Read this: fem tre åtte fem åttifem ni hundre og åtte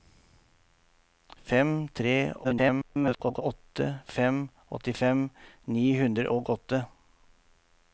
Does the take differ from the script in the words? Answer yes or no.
yes